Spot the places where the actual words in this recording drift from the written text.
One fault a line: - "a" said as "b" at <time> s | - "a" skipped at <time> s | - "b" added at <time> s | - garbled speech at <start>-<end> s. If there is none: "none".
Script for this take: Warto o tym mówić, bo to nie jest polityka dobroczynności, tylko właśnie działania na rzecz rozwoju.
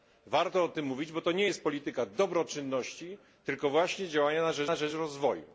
- "na rzecz" added at 4.6 s